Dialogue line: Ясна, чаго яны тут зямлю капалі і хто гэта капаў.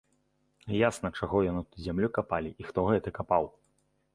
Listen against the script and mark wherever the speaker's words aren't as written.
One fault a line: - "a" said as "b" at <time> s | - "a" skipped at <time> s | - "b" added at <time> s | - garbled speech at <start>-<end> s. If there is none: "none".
none